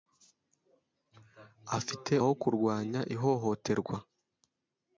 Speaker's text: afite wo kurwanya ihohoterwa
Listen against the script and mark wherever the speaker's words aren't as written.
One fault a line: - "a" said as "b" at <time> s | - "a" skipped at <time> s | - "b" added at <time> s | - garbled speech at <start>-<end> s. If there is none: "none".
none